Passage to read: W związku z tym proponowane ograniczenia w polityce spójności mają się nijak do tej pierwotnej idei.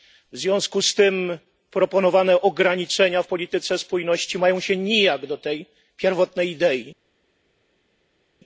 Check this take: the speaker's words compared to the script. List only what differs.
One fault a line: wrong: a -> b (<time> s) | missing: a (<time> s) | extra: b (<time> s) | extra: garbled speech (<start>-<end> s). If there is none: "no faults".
no faults